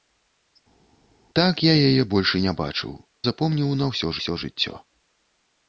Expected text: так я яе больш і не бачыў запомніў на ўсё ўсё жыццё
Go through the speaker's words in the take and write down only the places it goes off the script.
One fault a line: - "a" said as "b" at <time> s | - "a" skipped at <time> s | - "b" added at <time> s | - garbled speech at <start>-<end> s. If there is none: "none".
none